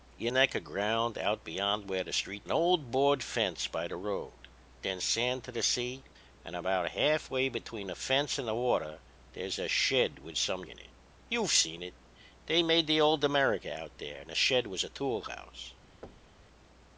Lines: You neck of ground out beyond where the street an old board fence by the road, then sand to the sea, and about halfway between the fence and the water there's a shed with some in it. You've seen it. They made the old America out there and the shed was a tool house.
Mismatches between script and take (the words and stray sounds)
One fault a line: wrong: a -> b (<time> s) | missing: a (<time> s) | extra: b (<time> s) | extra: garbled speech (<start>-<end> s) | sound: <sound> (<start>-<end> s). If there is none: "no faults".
sound: thud (16.0-16.5 s)